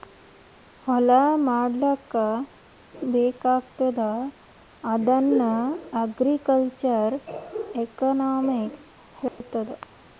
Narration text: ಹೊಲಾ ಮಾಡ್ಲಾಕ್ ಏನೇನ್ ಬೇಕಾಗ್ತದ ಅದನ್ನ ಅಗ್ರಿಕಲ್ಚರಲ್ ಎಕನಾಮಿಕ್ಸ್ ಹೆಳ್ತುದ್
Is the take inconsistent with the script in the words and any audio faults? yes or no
yes